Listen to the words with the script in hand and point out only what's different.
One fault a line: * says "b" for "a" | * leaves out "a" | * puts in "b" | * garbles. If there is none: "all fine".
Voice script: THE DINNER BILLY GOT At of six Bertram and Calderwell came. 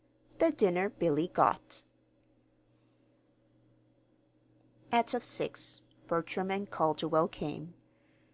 all fine